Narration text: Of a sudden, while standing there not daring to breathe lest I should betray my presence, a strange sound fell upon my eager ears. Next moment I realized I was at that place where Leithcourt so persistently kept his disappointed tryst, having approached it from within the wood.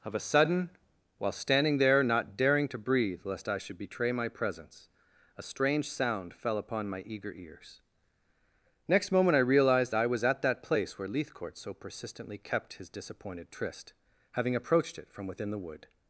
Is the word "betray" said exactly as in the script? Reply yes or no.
yes